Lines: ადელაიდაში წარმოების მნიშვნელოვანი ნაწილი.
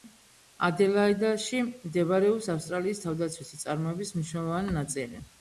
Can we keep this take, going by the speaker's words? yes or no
no